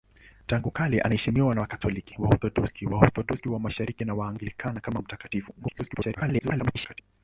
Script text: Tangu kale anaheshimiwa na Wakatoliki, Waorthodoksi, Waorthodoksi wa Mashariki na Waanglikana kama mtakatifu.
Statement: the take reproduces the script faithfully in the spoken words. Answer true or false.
false